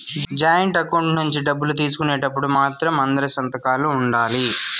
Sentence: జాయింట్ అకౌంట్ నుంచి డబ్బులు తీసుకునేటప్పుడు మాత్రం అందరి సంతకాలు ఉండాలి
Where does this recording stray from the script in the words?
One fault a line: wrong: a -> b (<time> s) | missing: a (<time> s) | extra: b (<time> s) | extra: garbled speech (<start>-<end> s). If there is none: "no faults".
no faults